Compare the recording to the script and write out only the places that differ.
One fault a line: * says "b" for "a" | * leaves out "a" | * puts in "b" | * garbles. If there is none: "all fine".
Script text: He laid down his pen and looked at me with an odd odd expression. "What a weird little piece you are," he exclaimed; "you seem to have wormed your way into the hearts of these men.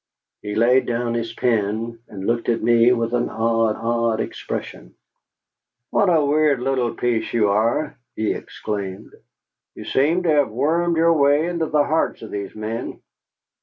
all fine